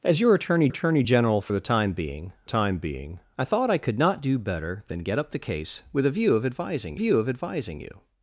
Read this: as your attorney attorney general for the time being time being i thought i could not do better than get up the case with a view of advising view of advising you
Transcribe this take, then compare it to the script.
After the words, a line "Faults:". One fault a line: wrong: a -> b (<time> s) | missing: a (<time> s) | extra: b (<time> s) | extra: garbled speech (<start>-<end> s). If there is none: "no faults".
as your attorney attorney general for the time being time being i thought i could not do better than get up the case with a view of advising view of advising you
Faults:
no faults